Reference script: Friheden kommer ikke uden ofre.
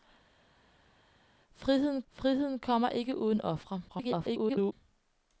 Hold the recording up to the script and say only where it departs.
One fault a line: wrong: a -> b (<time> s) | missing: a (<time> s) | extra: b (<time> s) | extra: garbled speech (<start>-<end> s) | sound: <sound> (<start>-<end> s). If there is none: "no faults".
extra: friheden (2.1 s)
extra: garbled speech (3.9-4.7 s)